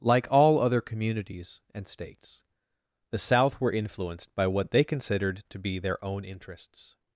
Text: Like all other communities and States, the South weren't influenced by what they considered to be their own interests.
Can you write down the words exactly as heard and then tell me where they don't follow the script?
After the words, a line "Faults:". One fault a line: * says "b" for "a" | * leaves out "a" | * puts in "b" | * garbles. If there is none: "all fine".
Like all other communities and States, the South were influenced by what they considered to be their own interests.
Faults:
* says "were" for "weren't"